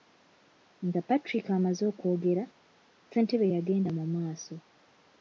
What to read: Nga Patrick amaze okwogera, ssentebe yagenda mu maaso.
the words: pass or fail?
pass